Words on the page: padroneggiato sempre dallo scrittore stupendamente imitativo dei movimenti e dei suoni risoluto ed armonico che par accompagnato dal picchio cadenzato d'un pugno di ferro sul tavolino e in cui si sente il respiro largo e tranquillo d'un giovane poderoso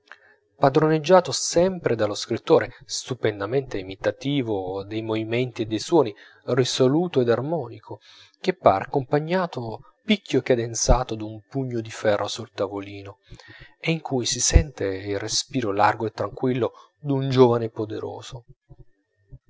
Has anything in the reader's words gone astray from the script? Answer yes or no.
yes